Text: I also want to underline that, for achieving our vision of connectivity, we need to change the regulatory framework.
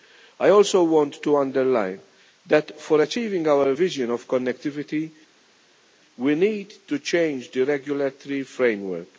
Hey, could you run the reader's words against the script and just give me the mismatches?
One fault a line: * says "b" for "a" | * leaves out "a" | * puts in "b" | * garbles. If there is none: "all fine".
all fine